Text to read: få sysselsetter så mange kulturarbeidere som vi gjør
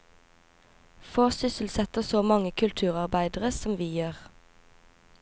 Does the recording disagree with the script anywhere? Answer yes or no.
no